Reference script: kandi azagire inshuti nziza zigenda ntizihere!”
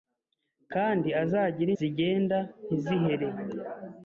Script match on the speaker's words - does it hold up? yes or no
no